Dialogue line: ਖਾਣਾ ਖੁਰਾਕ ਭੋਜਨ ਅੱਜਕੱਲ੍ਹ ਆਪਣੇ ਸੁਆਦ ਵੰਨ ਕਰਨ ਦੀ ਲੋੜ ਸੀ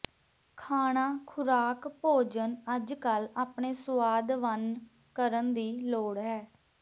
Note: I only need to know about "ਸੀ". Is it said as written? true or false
false